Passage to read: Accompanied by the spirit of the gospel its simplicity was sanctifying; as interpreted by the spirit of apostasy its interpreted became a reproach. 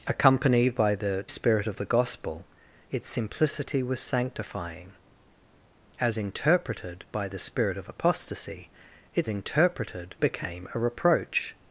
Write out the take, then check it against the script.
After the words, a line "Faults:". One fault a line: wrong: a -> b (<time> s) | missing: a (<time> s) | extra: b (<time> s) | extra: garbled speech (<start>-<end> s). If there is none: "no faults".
Accompanied by the spirit of the gospel its simplicity was sanctifying; as interpreted by the spirit of apostasy its interpreted became a reproach.
Faults:
no faults